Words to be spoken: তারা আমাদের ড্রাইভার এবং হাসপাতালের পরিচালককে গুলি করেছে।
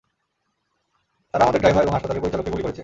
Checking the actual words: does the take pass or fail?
pass